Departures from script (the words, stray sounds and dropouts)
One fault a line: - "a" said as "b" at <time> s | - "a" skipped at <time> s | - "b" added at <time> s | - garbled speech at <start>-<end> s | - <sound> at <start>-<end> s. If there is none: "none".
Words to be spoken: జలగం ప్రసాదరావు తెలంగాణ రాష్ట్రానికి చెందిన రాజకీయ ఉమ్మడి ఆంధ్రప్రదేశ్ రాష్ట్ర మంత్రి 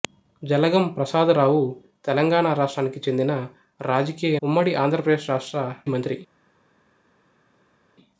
none